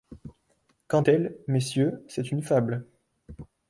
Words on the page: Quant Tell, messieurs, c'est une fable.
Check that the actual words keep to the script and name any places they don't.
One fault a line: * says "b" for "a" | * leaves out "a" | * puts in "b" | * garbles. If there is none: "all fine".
all fine